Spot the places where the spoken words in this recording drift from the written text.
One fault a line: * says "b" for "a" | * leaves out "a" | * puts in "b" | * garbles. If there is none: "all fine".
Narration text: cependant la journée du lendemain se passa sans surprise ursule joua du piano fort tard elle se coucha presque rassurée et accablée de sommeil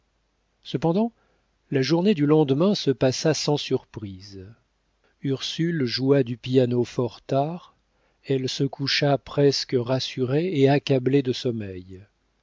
all fine